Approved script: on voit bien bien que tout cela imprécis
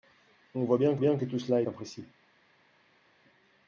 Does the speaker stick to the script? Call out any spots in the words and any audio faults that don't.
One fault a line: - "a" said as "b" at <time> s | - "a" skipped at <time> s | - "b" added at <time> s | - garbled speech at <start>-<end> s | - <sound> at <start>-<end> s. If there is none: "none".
none